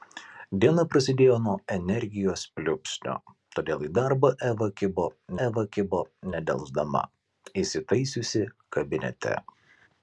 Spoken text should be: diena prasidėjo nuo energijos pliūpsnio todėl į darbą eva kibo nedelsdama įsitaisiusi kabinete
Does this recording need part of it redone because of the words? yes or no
yes